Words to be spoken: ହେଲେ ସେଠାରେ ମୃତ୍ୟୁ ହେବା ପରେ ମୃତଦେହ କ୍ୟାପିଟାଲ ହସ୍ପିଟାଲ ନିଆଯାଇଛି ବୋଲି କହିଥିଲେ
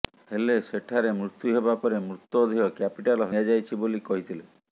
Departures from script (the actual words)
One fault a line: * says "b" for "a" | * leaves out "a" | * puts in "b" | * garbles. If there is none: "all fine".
* leaves out "ହସ୍ପିଟାଲ"